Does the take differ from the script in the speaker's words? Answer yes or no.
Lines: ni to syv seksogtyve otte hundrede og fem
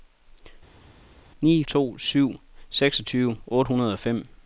no